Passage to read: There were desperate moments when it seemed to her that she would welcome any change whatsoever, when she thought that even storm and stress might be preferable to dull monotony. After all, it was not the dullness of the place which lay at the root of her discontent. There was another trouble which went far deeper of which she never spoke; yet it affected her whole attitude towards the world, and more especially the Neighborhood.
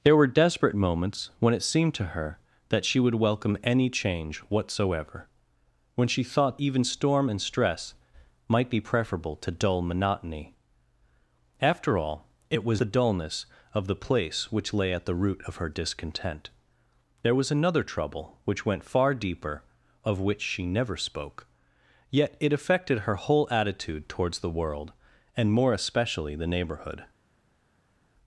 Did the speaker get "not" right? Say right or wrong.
wrong